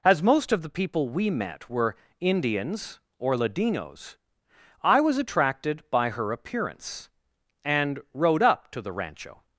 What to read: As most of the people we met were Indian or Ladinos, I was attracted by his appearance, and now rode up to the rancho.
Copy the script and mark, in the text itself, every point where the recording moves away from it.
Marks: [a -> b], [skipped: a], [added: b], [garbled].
As most of the people we met were [Indian -> Indians] or Ladinos, I was attracted by [his -> her] appearance, and [skipped: now] rode up to the rancho.